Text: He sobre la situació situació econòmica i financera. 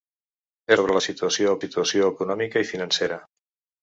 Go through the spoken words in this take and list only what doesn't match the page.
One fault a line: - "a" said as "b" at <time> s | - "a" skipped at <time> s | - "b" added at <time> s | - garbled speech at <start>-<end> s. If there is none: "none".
none